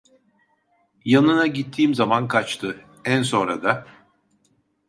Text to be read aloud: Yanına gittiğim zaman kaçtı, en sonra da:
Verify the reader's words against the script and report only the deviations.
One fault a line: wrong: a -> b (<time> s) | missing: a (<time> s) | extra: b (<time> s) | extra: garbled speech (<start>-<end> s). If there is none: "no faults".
no faults